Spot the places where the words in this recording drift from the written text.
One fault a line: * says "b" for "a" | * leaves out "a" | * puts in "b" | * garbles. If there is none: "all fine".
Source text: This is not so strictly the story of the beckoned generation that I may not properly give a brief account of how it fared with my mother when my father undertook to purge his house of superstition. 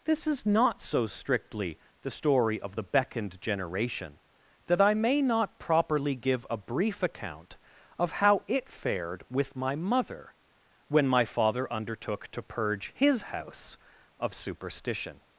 all fine